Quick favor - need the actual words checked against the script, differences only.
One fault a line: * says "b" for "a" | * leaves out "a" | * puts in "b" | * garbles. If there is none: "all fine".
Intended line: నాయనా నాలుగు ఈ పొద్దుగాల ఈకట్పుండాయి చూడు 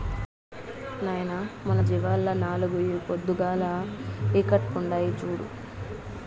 * puts in "మన జీవాల్ల"